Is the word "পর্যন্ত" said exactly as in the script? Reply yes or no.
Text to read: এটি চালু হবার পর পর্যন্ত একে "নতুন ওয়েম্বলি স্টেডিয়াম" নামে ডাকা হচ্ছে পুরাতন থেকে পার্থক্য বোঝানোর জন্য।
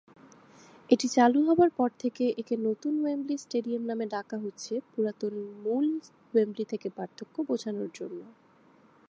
no